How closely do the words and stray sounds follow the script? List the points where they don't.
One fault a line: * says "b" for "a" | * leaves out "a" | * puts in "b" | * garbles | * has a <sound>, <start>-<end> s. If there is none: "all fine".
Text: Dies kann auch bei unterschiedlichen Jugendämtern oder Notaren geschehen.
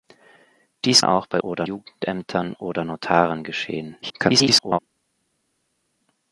* leaves out "kann"
* says "oder" for "unterschiedlichen"
* garbles